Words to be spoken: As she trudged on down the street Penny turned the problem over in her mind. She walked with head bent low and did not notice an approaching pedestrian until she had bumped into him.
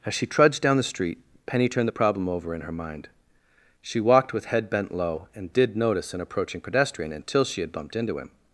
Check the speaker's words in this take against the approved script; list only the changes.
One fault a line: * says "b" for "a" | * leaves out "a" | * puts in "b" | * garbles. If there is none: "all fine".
* leaves out "on"
* leaves out "not"